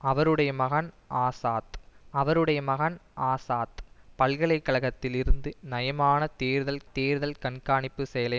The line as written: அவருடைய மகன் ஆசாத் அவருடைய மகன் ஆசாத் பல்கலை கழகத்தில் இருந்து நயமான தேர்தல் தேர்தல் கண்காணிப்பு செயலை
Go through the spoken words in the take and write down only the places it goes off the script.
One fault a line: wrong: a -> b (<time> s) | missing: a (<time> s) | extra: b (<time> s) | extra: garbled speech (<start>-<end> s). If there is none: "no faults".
no faults